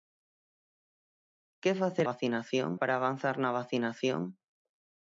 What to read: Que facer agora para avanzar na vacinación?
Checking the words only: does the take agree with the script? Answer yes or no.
no